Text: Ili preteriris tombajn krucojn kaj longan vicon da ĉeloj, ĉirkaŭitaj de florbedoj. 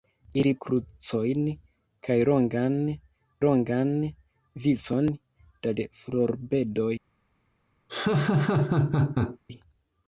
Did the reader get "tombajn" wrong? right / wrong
wrong